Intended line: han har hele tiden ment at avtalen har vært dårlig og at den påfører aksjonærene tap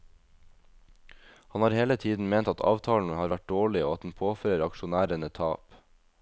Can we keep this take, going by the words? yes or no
yes